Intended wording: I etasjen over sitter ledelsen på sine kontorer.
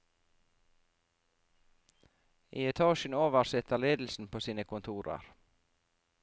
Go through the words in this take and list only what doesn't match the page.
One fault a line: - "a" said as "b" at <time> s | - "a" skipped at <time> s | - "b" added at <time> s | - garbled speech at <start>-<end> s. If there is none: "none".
none